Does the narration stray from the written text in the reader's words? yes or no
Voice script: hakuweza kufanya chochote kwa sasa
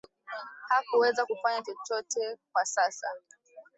no